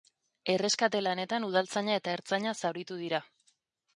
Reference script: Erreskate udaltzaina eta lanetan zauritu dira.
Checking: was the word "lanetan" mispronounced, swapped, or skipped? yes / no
yes